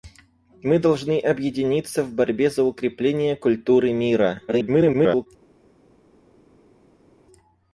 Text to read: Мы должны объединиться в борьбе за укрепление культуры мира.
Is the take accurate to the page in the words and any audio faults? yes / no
no